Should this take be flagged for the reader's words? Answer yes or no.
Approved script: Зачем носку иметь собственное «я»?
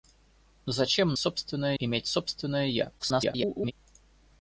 yes